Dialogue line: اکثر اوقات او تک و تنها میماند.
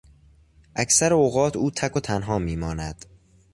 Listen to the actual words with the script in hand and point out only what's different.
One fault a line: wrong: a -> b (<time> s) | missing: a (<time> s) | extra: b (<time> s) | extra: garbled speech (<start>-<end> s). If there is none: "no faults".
no faults